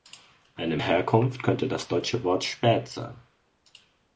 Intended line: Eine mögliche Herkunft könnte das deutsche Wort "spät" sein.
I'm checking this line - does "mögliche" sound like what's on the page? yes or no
no